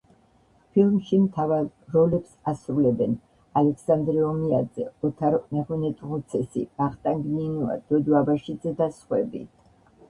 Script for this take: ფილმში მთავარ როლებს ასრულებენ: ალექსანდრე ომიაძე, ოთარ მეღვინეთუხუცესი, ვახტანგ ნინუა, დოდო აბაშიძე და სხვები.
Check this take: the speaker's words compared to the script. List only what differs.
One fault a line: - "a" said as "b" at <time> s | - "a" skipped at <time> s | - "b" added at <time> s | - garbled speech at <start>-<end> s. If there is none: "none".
none